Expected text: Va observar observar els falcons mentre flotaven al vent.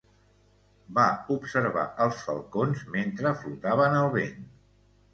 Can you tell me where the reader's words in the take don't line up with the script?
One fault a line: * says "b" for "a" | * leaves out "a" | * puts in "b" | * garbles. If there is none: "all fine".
* leaves out "observar"